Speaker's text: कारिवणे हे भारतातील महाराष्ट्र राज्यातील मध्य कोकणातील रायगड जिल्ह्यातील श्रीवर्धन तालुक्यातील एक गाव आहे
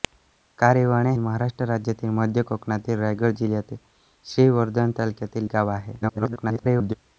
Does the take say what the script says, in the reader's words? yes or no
no